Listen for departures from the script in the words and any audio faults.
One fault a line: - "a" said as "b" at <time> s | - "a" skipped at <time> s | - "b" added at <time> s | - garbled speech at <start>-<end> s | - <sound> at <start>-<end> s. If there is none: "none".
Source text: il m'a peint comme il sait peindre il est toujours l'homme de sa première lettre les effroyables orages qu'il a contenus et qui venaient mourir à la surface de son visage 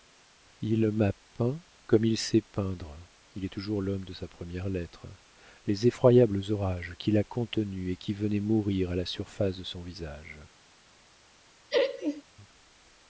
- laugh at 11.7-12.2 s